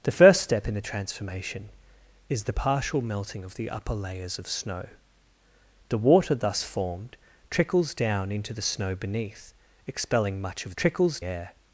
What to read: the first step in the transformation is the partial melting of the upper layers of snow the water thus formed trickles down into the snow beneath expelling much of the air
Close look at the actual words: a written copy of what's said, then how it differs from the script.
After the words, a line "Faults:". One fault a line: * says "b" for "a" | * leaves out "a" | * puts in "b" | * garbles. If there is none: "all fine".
the first step in the transformation is the partial melting of the upper layers of snow the water thus formed trickles down into the snow beneath expelling much of trickles air
Faults:
* says "trickles" for "the"